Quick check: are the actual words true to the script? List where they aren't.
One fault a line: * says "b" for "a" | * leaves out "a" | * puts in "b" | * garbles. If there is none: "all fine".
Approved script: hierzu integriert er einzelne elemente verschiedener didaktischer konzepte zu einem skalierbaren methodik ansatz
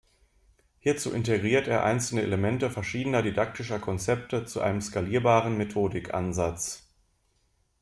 all fine